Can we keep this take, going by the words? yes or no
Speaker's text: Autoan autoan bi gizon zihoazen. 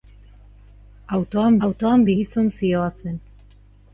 yes